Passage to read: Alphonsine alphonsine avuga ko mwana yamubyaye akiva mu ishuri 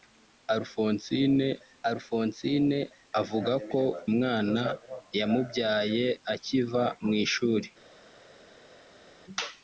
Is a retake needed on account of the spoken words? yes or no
no